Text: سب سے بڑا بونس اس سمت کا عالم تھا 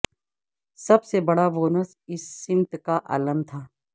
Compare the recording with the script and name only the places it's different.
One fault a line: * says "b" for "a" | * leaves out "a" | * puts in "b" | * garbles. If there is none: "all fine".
all fine